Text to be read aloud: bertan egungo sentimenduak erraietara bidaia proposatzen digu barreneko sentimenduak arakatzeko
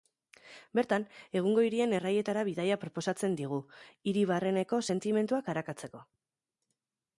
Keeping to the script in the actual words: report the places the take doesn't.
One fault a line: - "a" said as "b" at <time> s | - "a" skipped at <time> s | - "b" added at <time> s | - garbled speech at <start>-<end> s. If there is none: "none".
- "sentimenduak" said as "hirien" at 1.7 s
- "hiri" added at 4.1 s